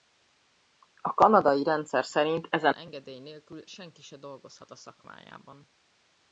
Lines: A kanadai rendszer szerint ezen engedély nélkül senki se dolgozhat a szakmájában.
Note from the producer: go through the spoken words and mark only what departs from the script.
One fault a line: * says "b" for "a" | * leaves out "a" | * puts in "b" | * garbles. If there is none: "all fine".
all fine